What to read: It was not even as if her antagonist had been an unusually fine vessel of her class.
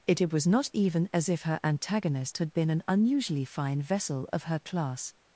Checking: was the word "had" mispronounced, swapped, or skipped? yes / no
no